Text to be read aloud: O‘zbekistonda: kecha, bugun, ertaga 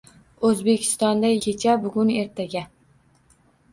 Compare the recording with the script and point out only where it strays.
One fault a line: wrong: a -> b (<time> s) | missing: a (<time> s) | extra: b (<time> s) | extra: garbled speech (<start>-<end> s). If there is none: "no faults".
no faults